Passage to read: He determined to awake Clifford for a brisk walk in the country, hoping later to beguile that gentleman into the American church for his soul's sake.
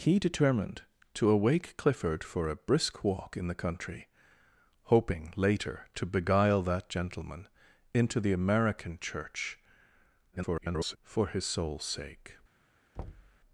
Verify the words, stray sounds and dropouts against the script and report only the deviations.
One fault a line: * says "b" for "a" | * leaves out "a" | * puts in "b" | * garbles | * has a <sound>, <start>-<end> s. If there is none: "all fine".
* garbles
* has a thud, 12.9-13.4 s